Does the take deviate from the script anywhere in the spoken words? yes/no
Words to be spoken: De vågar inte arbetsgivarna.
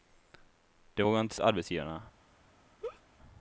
no